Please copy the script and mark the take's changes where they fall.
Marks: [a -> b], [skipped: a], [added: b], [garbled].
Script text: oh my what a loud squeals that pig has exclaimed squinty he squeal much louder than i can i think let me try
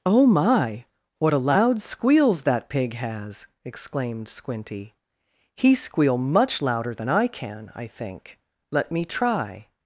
oh my what a loud squeals that pig has exclaimed squinty he squeal much louder than i can i think let me try